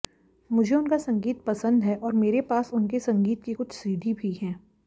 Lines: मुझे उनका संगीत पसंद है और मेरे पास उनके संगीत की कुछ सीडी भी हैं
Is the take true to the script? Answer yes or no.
yes